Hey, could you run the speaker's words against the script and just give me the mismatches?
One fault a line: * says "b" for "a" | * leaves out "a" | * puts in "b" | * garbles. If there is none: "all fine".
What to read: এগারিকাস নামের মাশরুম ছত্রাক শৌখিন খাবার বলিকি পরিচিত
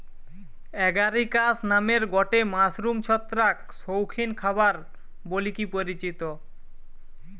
* puts in "গটে"